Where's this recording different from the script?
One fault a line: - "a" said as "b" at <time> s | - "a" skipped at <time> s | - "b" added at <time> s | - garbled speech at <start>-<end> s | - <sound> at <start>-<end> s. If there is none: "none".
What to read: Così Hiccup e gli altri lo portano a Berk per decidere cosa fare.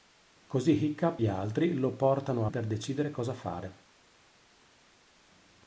- "e" skipped at 1.2 s
- "Berk" skipped at 2.5 s